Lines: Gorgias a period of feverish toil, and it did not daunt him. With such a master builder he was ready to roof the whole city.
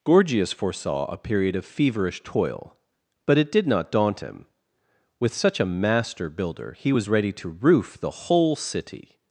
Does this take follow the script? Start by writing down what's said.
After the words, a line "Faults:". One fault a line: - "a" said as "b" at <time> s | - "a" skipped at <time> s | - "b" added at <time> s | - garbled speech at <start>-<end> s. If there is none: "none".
Gorgias foresaw a period of feverish toil, but it did not daunt him. With such a master builder he was ready to roof the whole city.
Faults:
- "foresaw" added at 0.5 s
- "and" said as "but" at 3.3 s